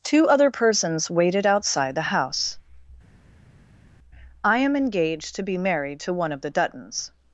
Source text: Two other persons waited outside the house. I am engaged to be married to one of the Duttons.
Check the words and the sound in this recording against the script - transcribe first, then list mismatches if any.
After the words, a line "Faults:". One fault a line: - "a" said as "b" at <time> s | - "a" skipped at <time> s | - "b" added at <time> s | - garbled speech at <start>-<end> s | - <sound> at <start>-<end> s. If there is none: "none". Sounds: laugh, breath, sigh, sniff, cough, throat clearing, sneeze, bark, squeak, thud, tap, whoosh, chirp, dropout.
Two other persons waited outside the house. I am engaged to be married to one of the Duttons.
Faults:
none